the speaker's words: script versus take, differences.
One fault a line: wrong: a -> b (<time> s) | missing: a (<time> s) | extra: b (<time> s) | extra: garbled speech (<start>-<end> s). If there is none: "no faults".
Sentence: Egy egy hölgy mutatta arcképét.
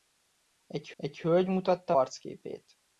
no faults